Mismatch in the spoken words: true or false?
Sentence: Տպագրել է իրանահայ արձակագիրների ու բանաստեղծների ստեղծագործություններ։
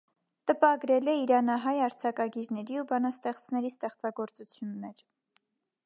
false